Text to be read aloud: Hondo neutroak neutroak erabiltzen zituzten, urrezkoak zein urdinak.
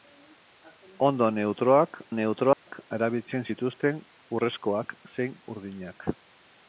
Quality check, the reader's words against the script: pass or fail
pass